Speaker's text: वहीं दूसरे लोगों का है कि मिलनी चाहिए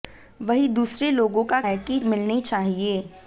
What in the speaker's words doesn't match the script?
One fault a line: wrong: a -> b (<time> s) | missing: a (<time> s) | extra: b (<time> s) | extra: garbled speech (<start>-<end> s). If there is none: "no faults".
no faults